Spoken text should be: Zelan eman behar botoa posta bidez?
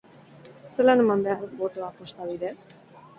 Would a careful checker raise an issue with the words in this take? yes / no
no